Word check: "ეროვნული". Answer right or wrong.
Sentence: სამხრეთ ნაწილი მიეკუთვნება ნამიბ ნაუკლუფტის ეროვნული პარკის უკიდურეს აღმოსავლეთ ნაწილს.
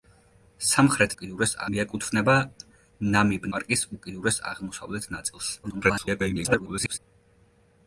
wrong